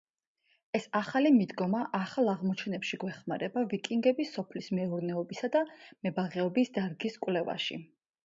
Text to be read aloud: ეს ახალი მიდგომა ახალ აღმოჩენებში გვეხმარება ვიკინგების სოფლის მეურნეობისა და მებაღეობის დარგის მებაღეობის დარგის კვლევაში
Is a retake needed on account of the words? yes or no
yes